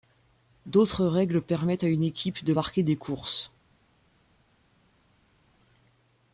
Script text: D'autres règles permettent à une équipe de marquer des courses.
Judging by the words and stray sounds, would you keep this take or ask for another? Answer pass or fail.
pass